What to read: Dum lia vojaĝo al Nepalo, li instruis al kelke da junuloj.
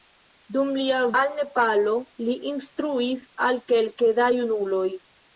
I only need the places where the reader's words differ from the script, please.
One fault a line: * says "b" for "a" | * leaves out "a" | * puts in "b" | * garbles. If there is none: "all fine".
* leaves out "vojaĝo"